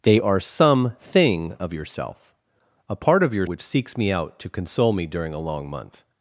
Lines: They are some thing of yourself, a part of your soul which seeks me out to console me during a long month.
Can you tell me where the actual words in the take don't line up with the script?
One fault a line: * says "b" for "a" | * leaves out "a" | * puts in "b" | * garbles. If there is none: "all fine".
* leaves out "soul"